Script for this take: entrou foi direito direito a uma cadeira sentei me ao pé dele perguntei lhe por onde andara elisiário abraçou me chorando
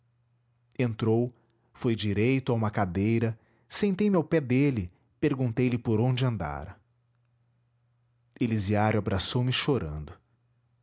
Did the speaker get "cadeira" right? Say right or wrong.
right